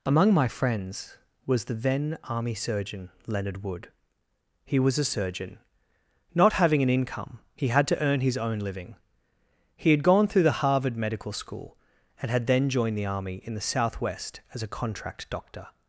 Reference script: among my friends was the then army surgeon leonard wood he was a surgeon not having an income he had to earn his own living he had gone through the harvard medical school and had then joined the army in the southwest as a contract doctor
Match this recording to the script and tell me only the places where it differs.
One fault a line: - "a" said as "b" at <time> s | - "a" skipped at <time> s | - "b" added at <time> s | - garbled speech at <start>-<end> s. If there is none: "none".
none